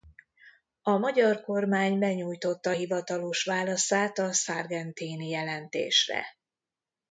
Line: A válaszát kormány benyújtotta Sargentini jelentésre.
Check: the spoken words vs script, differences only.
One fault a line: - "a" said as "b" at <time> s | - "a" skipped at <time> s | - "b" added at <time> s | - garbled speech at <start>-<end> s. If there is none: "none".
- "válaszát" said as "magyar" at 1.0 s
- "hivatalos válaszát a" added at 2.7 s